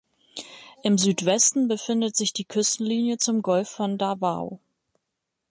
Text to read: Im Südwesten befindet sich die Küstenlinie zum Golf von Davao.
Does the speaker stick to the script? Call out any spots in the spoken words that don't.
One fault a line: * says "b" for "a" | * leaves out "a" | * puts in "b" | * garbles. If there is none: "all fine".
all fine